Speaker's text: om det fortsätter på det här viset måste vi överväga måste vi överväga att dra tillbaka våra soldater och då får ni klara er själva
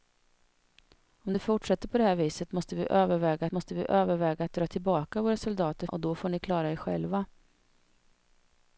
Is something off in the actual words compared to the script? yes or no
no